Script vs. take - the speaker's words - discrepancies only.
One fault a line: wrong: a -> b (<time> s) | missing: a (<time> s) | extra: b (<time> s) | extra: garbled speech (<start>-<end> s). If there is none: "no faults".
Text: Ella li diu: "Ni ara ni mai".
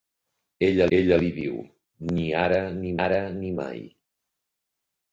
extra: ella (1.0 s)
extra: ara ni (3.1 s)